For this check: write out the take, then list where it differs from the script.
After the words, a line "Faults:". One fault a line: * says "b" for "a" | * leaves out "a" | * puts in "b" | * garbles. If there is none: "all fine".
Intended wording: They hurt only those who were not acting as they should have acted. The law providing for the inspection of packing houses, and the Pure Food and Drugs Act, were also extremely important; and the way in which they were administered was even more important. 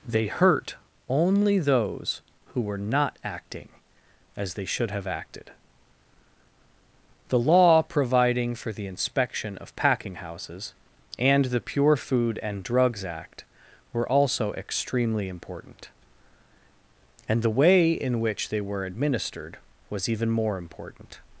They hurt only those who were not acting as they should have acted. The law providing for the inspection of packing houses, and the Pure Food and Drugs Act, were also extremely important; and the way in which they were administered was even more important.
Faults:
all fine